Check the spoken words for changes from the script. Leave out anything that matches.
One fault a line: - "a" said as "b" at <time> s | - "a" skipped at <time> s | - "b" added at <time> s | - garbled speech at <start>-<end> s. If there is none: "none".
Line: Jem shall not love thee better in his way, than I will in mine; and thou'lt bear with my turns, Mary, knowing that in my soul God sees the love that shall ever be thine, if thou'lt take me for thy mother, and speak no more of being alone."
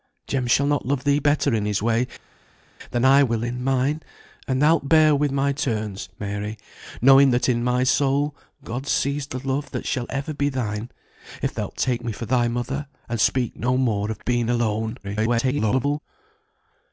- garbled speech at 15.0-16.0 s